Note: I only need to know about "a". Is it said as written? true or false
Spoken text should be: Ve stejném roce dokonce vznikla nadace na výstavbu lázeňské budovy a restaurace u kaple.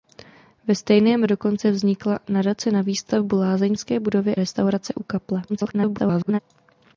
false